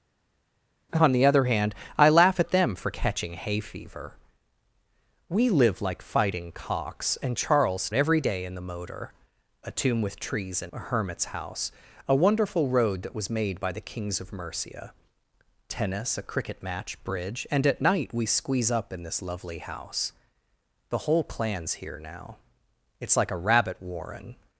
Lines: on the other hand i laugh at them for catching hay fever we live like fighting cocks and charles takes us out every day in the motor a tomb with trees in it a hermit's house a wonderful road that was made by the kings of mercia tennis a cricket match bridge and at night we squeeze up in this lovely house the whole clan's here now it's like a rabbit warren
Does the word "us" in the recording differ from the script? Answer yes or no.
yes